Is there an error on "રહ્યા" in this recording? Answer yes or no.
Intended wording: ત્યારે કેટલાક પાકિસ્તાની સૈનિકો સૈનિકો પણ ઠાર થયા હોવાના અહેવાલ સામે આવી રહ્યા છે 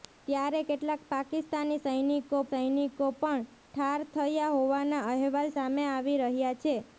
no